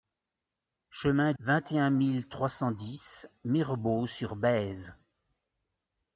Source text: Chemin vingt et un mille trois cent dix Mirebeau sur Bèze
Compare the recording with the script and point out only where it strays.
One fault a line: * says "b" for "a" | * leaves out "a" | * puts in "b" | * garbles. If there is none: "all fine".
all fine